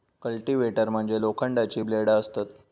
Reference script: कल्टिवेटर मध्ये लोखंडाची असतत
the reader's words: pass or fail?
fail